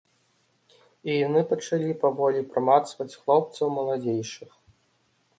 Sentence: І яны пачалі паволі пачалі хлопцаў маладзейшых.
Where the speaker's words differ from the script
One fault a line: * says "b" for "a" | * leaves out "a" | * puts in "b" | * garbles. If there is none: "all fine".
* says "прамацваць" for "пачалі"